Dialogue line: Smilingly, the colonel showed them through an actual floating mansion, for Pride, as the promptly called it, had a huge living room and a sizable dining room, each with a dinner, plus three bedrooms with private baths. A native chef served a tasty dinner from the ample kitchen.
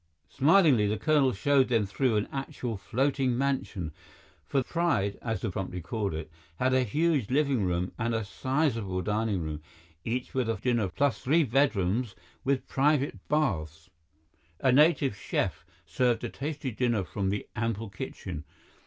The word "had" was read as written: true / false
true